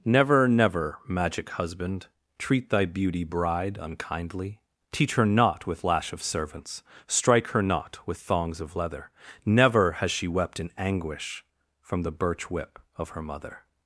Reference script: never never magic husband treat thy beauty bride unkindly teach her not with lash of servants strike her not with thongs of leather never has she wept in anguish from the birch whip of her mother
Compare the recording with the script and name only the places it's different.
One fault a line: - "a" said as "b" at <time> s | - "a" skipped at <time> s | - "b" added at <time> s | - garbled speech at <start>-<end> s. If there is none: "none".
none